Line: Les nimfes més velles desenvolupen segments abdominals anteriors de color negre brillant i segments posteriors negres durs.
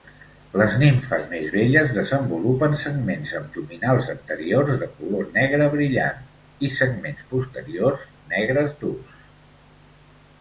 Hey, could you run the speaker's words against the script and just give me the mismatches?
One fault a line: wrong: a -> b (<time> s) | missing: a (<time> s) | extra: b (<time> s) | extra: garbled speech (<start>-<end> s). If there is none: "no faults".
no faults